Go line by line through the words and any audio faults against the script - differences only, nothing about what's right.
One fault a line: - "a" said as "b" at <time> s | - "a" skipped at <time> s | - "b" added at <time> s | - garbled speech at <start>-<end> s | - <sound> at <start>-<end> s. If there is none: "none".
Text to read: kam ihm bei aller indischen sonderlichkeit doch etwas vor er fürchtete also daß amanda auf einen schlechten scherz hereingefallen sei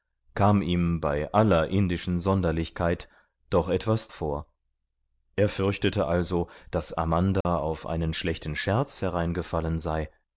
- dropout at 7.4-7.5 s